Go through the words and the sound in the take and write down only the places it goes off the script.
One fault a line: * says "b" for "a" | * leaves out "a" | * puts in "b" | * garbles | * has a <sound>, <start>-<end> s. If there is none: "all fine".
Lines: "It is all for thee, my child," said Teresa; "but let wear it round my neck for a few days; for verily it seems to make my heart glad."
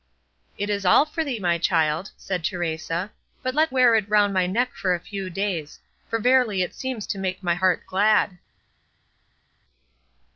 all fine